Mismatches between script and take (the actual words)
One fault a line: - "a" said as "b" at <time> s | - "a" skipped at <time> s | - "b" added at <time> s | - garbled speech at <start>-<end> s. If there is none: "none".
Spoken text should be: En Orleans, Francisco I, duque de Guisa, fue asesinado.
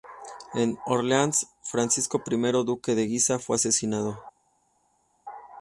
none